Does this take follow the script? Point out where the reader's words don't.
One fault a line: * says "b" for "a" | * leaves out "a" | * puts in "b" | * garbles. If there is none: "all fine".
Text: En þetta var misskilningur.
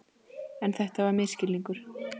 all fine